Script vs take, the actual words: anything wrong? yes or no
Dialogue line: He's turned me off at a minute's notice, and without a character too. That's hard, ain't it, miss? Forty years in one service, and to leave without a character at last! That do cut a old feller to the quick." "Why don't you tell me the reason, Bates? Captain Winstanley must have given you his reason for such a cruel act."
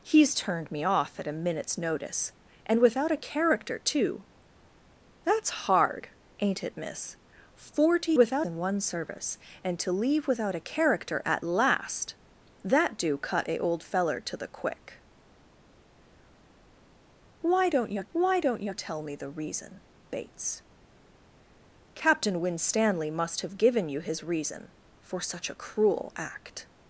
yes